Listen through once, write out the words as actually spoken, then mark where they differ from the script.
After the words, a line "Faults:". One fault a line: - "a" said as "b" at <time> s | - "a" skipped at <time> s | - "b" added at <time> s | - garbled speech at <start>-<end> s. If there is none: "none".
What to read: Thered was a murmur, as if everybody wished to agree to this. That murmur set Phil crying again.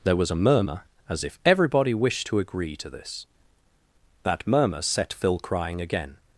There was a murmur, as if everybody wished to agree to this. That murmur set Phil crying again.
Faults:
- "Thered" said as "There" at 0.0 s